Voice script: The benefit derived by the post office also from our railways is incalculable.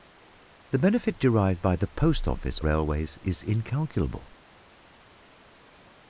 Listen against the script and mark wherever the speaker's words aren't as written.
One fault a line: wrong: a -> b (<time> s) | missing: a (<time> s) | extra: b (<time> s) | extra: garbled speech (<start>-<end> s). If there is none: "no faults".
missing: also from our (2.6 s)